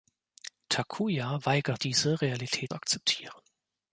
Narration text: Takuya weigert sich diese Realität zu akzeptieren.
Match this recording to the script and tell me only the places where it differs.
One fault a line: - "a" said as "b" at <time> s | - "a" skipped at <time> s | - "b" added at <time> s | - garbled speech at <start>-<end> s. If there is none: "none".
- "sich" skipped at 1.8 s
- "zu" skipped at 2.7 s